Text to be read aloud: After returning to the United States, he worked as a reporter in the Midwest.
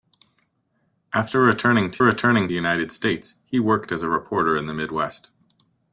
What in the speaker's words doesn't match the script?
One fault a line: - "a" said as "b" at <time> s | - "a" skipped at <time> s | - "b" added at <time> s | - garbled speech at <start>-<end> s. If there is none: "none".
- "the" said as "returning" at 2.0 s